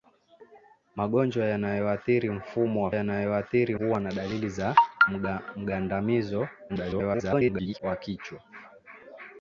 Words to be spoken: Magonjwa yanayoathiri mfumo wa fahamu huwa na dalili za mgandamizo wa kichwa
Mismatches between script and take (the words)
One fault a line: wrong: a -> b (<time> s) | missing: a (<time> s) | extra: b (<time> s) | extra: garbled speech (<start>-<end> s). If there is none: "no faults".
wrong: fahamu -> yanayoathiri (2.9 s)
extra: garbled speech (6.7-7.8 s)